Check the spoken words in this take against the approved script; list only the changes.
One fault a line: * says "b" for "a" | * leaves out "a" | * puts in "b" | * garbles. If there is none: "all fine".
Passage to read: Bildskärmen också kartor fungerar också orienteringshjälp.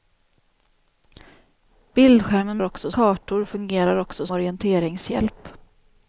all fine